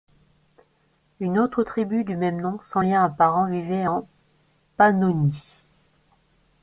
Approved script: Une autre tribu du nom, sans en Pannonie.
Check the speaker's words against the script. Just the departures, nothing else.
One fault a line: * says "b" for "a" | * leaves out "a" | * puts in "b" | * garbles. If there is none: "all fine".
* puts in "même"
* puts in "lien apparent vivait"